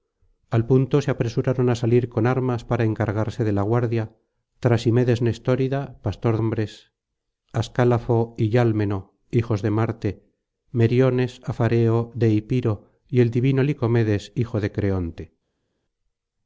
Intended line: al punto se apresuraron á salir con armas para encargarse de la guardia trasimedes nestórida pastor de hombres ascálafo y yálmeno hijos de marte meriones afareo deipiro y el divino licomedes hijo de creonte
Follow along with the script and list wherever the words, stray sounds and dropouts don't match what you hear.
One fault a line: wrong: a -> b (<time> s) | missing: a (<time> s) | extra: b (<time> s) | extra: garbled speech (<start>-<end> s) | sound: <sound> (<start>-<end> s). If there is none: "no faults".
missing: de (6.3 s)